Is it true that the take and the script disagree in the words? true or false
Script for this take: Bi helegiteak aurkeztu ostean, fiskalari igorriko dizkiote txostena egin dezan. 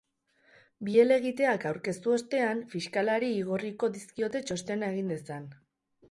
false